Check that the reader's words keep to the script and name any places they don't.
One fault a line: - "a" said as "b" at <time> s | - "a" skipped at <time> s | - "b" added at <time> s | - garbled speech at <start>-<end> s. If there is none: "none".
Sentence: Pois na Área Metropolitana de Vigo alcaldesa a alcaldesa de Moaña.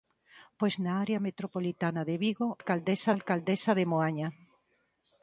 none